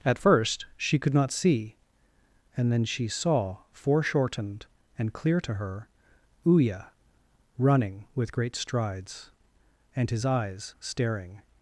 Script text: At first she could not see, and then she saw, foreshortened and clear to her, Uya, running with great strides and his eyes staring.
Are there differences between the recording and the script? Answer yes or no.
no